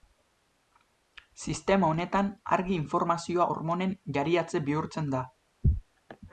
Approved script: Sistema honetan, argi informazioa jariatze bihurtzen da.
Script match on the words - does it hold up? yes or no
no